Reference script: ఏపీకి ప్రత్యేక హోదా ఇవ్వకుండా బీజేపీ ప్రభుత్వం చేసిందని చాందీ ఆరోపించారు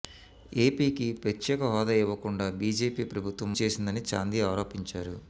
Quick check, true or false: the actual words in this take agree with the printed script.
true